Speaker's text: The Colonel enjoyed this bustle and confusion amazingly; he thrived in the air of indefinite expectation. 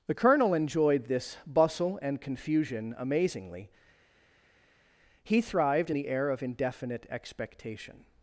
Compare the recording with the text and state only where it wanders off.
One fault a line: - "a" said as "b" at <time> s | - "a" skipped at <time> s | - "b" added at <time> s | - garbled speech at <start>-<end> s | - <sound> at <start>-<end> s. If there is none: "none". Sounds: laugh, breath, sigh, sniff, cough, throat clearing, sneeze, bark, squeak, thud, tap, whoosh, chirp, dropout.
none